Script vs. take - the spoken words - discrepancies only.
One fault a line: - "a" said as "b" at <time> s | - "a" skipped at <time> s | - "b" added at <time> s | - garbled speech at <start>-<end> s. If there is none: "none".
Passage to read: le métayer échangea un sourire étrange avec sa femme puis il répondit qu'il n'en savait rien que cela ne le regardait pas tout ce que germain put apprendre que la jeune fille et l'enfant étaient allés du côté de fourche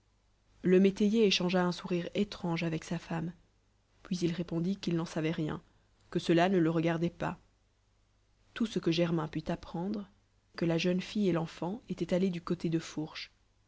none